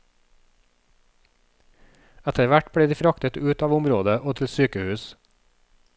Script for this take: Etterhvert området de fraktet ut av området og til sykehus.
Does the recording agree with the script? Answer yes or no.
no